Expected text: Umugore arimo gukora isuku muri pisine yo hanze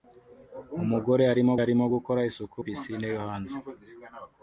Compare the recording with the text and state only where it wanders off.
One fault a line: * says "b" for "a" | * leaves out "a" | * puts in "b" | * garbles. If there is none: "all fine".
* puts in "arimo"
* leaves out "muri"